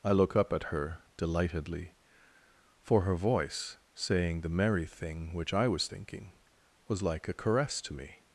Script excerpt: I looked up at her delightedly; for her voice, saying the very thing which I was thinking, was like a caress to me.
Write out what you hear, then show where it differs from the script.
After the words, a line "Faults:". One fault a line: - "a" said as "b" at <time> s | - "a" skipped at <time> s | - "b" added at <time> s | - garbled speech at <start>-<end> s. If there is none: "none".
I look up at her delightedly; for her voice, saying the merry thing which I was thinking, was like a caress to me.
Faults:
- "looked" said as "look" at 0.1 s
- "very" said as "merry" at 4.5 s